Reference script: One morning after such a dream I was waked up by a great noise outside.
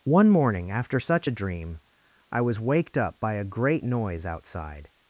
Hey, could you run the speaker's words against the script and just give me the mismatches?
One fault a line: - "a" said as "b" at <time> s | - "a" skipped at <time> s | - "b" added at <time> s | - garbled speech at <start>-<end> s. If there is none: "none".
none